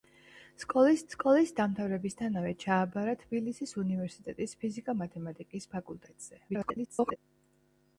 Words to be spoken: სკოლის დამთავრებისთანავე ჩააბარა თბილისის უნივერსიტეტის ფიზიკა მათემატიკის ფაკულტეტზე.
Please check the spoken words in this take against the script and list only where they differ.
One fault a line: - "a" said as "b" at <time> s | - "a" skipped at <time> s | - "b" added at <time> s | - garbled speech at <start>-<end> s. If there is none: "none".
- "სკოლის" added at 1.1 s
- garbled speech at 6.5-7.2 s